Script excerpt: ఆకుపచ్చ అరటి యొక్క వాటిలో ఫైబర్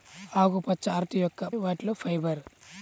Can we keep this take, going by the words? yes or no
yes